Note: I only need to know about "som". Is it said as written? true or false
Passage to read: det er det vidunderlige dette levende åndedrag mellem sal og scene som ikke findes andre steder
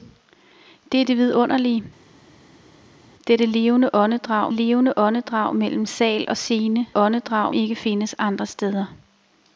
false